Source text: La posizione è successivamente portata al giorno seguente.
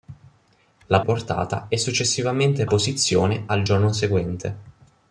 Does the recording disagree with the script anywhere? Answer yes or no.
yes